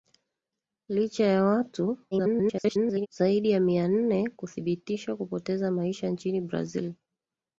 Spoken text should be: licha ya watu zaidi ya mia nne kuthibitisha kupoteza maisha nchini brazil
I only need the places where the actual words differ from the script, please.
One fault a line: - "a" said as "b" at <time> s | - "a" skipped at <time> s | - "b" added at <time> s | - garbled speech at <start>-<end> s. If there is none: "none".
- garbled speech at 2.1-3.1 s